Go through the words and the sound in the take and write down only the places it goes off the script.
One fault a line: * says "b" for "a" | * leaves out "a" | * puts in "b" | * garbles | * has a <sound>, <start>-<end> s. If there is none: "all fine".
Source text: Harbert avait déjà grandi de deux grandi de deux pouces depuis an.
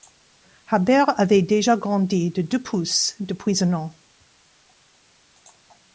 * leaves out "grandi de deux"
* puts in "un"